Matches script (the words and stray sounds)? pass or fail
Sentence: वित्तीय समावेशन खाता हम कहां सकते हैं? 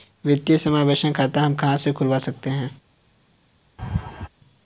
fail